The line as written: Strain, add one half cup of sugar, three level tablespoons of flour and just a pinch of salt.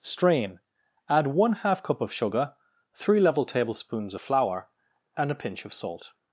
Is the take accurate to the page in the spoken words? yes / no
no